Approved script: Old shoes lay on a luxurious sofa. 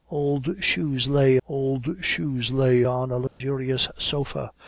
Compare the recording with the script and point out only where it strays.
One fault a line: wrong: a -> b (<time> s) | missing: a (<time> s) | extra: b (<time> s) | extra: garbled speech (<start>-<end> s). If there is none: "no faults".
extra: old shoes lay (1.5 s)